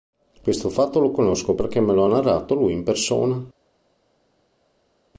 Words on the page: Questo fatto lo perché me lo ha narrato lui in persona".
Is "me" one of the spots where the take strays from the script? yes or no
no